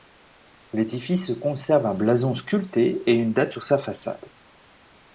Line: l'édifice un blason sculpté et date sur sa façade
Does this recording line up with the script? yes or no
no